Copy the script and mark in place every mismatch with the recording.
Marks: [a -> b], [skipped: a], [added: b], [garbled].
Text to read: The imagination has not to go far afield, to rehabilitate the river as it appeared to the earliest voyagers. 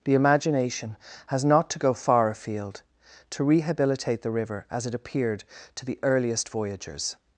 The imagination has not to go far afield, to rehabilitate the river as it appeared to the earliest voyagers.